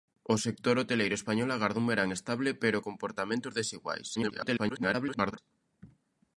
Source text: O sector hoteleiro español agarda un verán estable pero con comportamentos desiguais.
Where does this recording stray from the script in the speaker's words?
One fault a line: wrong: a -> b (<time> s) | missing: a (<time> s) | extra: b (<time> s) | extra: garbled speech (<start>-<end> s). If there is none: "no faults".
missing: con (2.8 s)
extra: garbled speech (4.2-5.4 s)